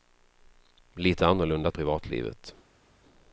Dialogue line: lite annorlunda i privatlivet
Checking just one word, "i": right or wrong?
right